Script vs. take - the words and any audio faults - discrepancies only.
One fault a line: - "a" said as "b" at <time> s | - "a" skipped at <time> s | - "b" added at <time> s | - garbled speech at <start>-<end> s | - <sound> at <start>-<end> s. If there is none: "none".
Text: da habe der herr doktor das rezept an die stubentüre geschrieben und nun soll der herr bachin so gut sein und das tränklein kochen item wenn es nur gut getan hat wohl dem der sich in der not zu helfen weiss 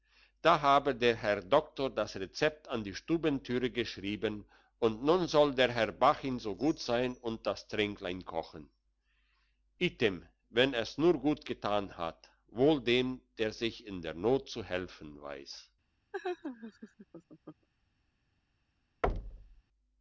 - laugh at 16.1-17.7 s
- thud at 19.0-19.6 s